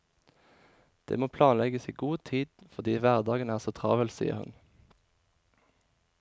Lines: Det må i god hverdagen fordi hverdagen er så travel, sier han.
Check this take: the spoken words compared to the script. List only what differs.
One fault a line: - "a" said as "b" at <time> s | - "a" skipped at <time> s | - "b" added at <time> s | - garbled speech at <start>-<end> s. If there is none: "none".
- "planlegges" added at 1.4 s
- "hverdagen" said as "tid" at 2.3 s
- "han" said as "hun" at 4.4 s